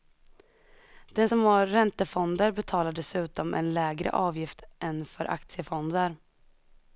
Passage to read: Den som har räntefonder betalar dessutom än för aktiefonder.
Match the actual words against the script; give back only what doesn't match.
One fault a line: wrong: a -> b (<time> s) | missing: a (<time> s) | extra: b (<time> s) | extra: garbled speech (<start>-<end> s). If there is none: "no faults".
extra: en lägre avgift (3.5 s)